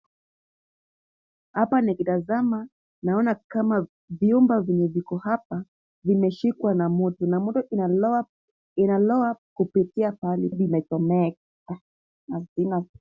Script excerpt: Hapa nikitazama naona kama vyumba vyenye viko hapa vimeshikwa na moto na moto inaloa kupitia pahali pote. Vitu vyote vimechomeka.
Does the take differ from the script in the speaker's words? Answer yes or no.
yes